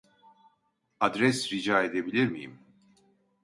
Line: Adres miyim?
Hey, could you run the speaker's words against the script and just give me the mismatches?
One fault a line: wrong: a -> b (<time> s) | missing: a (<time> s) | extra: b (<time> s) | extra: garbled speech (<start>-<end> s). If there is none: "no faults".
extra: rica edebilir (1.5 s)